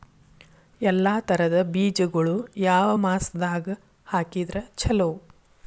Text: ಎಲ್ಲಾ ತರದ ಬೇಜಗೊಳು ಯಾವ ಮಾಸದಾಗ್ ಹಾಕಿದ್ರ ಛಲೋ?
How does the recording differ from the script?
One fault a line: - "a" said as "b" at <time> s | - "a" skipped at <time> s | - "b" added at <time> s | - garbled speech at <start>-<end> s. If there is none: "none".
none